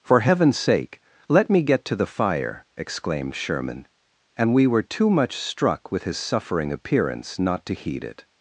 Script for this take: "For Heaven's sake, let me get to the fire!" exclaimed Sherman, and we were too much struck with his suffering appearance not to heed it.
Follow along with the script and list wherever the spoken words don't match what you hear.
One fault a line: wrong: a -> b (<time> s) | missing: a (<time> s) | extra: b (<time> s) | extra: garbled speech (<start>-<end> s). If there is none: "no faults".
no faults